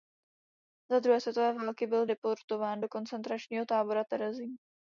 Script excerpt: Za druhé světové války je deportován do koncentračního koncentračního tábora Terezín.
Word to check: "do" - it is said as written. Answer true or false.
true